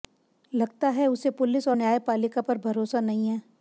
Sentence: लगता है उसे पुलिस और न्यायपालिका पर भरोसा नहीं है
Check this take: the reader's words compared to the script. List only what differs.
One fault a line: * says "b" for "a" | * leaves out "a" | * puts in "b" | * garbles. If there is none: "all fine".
all fine